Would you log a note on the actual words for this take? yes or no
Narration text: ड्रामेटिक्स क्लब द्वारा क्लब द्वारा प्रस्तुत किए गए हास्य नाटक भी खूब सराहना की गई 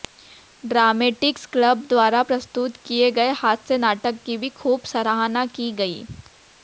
yes